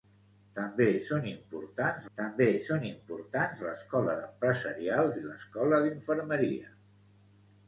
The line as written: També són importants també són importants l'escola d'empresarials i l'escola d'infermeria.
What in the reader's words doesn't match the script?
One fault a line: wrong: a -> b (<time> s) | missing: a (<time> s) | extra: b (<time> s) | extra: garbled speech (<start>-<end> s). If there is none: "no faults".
no faults